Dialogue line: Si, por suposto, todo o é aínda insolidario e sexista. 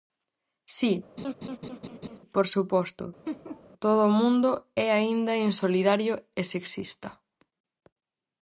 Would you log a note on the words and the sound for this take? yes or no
yes